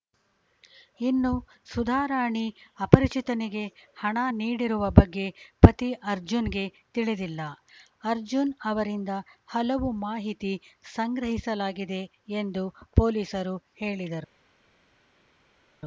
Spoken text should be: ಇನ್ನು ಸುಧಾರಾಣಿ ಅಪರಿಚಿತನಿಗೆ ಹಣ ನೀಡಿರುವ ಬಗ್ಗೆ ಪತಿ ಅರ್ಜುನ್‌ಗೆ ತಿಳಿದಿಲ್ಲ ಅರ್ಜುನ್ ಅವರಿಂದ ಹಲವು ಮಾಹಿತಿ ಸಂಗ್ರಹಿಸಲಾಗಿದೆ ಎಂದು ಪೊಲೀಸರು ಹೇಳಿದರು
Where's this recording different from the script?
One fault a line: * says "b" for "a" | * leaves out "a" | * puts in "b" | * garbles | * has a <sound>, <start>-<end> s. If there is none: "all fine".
all fine